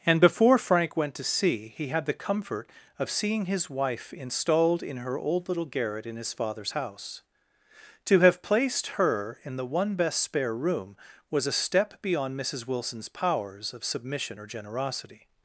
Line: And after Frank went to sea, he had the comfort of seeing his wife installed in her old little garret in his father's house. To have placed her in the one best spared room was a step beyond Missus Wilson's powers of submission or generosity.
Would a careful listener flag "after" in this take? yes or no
yes